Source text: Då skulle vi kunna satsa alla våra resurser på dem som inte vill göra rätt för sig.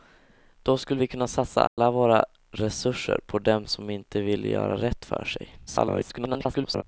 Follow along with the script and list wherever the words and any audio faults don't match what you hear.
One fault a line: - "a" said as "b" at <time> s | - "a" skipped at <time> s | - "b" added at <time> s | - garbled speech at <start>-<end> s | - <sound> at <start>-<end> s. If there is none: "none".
- dropout at 1.7-1.8 s
- garbled speech at 5.7-6.8 s